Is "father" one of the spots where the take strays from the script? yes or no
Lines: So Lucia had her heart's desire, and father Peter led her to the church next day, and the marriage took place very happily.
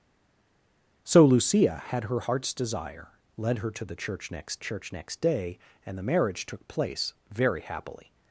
yes